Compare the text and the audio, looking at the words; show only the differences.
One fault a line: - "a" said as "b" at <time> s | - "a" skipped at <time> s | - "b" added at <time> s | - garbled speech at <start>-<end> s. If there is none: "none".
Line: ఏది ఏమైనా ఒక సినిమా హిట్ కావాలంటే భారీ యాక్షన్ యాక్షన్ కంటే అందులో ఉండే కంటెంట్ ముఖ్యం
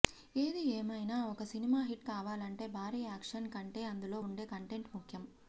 - "యాక్షన్" skipped at 3.5 s